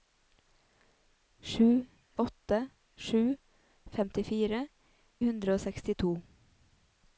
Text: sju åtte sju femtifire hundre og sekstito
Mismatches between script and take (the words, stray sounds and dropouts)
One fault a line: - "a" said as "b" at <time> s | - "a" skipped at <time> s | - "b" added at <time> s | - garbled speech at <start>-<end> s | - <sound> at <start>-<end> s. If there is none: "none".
none